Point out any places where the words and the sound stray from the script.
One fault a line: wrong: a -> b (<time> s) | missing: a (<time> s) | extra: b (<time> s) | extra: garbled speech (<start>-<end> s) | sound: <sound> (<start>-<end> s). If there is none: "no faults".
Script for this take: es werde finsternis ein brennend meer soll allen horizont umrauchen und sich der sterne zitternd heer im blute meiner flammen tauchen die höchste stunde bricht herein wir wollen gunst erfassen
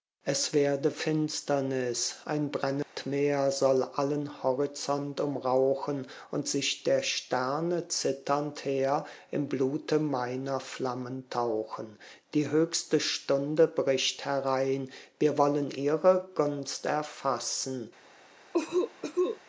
sound: dropout (2.8-3.0 s)
extra: ihre (15.7 s)
sound: cough (18.5-19.4 s)